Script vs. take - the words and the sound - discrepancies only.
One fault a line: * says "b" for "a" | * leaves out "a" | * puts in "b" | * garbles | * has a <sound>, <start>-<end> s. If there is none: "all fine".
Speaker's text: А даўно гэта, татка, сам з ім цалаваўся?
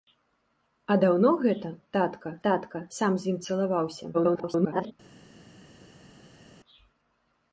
* puts in "татка"
* garbles